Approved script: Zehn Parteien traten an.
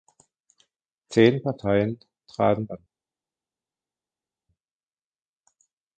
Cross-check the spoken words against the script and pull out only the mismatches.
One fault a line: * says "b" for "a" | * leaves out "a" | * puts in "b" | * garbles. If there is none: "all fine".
all fine